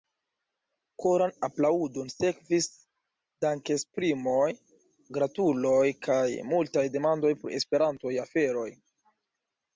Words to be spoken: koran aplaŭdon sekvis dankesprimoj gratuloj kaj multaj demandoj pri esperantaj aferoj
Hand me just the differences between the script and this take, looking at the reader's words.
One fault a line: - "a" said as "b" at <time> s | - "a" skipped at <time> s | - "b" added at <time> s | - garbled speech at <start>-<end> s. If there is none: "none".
none